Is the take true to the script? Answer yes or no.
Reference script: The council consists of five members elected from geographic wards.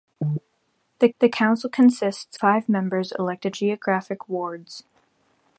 no